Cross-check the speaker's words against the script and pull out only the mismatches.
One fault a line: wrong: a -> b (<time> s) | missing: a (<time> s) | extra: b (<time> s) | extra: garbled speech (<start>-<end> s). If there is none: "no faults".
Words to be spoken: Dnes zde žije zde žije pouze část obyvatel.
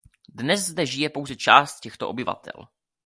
missing: zde žije (1.1 s)
extra: těchto (1.8 s)